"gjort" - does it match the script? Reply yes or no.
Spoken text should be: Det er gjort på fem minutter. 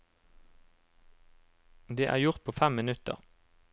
yes